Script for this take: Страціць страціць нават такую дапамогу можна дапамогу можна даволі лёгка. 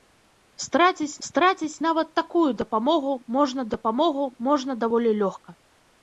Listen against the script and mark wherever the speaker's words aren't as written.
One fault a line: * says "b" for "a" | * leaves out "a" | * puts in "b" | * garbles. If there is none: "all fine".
all fine